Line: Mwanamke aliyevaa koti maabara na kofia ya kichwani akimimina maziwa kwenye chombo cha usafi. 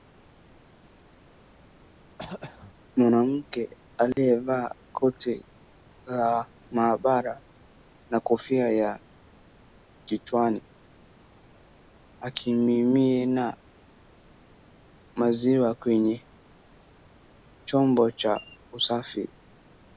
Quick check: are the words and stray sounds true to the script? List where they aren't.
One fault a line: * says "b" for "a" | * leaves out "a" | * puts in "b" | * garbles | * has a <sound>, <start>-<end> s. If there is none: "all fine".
* has a throat clearing, 2.2-2.8 s
* has a dropout, 4.1-4.2 s
* puts in "la"